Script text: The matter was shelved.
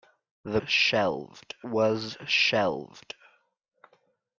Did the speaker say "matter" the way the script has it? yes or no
no